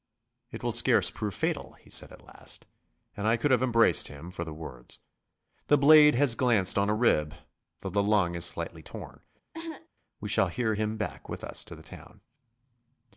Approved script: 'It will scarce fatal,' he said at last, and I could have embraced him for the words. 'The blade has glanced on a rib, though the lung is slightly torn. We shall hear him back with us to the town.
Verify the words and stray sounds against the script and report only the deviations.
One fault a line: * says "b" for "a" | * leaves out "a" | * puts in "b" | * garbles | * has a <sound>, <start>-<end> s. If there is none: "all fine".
* puts in "prove"
* has a cough, 9.5-9.9 s